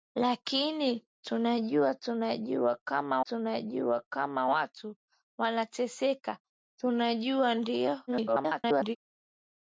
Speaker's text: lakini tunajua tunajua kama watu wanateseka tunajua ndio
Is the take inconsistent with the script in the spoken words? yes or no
yes